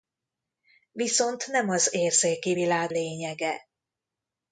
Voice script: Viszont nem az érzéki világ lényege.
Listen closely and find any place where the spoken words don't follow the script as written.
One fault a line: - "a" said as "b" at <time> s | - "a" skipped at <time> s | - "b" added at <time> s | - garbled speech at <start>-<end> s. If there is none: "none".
none